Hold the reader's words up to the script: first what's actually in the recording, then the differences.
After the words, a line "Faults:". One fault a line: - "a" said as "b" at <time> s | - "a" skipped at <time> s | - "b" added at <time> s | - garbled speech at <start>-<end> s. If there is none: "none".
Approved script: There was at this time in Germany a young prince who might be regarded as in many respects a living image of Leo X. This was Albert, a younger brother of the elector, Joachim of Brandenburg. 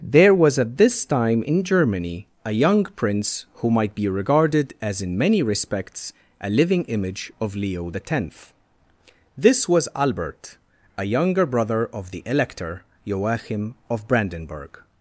There was at this time in Germany a young prince who might be regarded as in many respects a living image of Leo X. This was Albert, a younger brother of the elector, Joachim of Brandenburg.
Faults:
none